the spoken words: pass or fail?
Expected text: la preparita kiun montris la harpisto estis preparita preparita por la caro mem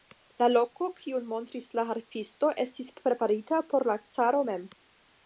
fail